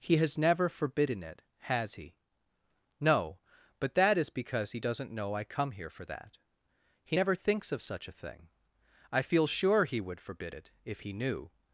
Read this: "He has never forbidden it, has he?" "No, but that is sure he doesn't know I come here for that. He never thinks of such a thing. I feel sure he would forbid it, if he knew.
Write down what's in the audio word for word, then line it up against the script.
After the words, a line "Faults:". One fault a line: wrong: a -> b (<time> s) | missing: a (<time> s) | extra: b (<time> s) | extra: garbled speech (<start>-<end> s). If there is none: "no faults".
"He has never forbidden it, has he?" "No, but that is because he doesn't know I come here for that. He never thinks of such a thing. I feel sure he would forbid it, if he knew.
Faults:
wrong: sure -> because (4.3 s)